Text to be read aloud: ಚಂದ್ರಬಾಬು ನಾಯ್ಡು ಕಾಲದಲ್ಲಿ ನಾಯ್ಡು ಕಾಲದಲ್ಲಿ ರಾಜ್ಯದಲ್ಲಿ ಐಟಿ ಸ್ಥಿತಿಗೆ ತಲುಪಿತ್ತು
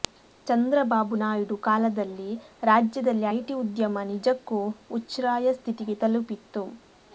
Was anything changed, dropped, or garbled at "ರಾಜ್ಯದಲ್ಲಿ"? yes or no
yes